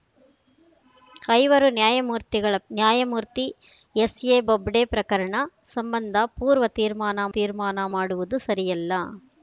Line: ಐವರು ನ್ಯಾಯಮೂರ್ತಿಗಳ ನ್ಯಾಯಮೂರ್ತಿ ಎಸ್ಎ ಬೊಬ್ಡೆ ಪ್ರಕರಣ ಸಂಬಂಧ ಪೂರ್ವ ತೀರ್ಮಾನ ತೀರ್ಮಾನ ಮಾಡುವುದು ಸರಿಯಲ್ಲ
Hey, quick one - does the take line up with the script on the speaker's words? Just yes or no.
yes